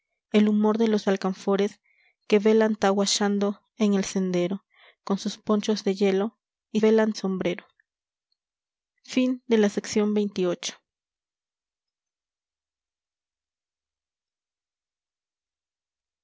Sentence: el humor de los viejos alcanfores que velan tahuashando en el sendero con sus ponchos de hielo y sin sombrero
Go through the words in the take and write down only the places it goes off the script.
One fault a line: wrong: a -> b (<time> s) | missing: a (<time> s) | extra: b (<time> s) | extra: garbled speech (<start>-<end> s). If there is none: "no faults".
missing: viejos (1.1 s)
wrong: sin -> velan (6.8 s)